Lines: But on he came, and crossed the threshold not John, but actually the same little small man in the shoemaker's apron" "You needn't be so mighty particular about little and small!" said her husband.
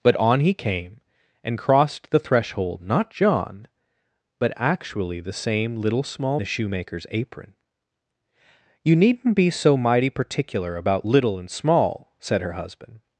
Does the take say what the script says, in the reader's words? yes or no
no